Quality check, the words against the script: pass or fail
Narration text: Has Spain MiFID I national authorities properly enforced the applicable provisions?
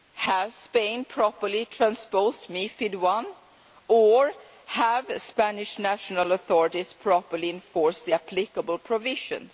fail